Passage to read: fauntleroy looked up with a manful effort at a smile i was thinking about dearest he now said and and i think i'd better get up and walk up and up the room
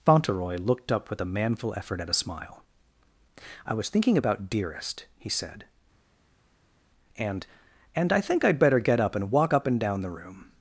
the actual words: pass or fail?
fail